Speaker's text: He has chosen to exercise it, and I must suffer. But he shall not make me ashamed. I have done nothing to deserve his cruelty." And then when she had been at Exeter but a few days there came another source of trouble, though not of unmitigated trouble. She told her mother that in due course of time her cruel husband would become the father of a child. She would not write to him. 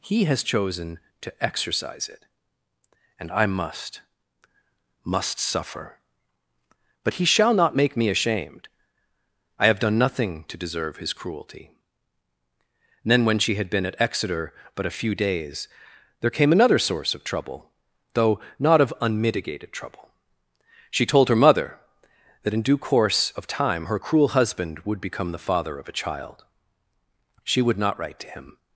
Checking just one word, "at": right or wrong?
right